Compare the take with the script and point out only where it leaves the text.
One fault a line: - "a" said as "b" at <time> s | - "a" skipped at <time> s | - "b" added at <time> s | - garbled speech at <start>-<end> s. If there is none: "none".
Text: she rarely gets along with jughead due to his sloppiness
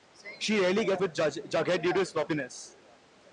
- "along" skipped at 1.0 s